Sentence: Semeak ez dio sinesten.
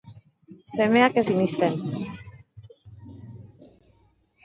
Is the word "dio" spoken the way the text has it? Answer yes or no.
no